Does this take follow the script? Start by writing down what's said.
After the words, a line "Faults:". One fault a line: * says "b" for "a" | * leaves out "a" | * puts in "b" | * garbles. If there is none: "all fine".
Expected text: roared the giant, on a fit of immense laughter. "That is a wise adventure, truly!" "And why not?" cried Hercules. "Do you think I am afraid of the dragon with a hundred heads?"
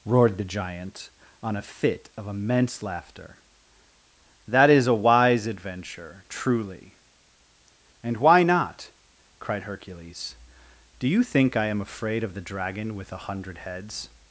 roared the giant, on a fit of immense laughter. "That is a wise adventure, truly!" "And why not?" cried Hercules. "Do you think I am afraid of the dragon with a hundred heads?"
Faults:
all fine